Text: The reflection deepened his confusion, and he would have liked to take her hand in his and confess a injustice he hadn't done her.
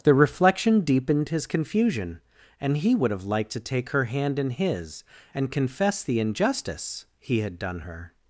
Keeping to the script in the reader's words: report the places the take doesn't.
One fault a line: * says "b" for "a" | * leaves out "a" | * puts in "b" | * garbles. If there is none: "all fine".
* says "the" for "a"
* says "had" for "hadn't"